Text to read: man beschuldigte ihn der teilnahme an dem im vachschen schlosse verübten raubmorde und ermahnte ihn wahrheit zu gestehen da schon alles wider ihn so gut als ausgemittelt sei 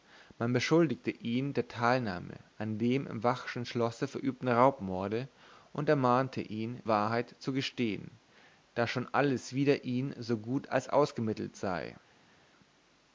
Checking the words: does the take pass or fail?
pass